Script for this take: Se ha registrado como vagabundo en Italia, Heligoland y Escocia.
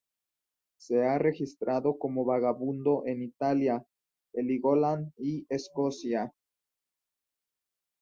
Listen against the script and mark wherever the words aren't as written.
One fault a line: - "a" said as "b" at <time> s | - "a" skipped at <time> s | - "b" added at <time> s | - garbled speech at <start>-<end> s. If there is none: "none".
none